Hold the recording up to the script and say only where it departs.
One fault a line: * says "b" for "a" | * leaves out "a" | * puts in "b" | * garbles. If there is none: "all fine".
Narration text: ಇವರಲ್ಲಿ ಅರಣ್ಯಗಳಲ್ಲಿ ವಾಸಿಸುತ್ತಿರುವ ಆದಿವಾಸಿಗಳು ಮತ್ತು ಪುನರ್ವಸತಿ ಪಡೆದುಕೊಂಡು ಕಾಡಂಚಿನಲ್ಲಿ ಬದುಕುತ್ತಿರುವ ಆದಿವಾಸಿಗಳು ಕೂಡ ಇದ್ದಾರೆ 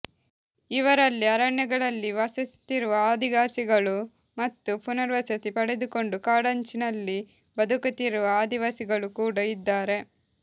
all fine